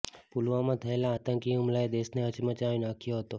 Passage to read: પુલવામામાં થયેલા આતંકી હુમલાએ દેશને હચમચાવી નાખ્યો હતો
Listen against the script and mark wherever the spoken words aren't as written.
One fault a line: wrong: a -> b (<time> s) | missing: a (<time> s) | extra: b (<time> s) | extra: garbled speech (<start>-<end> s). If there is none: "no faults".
no faults